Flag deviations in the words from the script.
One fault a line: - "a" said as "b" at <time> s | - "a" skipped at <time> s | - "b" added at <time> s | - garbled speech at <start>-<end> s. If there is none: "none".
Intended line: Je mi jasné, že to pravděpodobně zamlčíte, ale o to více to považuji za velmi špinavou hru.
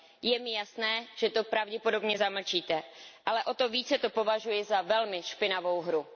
none